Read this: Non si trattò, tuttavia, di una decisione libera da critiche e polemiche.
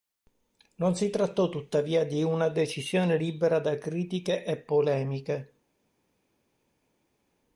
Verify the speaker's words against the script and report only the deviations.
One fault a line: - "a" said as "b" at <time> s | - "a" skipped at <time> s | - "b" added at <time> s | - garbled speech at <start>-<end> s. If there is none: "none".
none